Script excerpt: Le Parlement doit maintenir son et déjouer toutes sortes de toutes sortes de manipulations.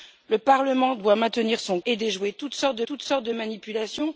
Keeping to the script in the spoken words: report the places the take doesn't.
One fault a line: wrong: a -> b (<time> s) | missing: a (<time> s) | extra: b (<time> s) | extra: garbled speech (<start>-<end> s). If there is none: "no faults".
no faults